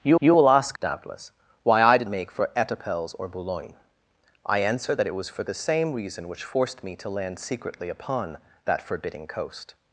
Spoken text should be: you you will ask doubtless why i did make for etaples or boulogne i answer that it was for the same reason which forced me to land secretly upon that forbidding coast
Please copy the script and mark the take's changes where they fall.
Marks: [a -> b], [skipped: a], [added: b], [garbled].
you you will ask doubtless why i did make for etaples or boulogne i answer that it was for the same reason which forced me to land secretly upon that forbidding coast